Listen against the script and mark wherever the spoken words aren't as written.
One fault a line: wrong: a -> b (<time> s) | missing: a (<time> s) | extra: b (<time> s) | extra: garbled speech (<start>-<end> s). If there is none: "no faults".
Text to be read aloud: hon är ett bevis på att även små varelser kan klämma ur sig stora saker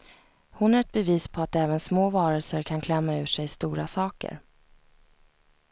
no faults